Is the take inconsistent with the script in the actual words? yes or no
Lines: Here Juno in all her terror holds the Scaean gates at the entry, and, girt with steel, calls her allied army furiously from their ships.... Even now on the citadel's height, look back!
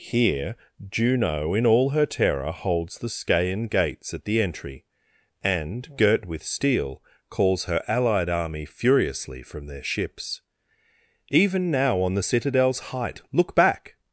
no